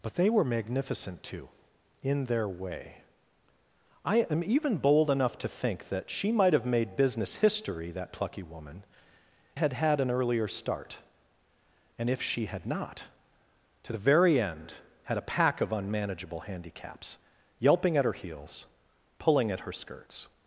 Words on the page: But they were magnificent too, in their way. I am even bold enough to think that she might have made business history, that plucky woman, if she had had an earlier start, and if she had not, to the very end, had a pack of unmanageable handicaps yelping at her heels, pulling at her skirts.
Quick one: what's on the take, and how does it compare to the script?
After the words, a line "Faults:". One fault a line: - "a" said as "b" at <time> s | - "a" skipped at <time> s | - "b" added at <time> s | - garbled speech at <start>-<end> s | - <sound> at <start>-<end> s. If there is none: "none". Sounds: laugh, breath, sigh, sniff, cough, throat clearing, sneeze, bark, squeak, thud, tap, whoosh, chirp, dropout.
But they were magnificent too, in their way. I am even bold enough to think that she might have made business history, that plucky woman, had had an earlier start, and if she had not, to the very end, had a pack of unmanageable handicaps yelping at her heels, pulling at her skirts.
Faults:
- "if she" skipped at 8.8 s